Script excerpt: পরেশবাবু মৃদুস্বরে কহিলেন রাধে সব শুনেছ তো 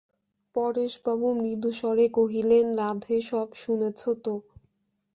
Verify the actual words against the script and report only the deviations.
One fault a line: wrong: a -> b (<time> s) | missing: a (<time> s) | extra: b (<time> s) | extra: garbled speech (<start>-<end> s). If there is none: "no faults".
no faults